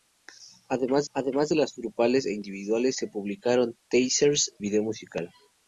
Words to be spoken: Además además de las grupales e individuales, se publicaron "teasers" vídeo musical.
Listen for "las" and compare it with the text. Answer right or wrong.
right